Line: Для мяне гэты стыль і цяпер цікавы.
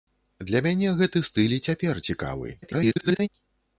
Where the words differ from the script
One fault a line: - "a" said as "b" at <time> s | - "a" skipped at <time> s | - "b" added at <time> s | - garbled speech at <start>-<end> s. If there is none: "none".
- garbled speech at 2.6-3.3 s